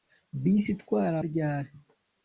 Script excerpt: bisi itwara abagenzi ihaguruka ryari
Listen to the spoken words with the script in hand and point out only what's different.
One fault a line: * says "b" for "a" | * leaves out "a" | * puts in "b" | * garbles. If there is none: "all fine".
* leaves out "abagenzi ihaguruka"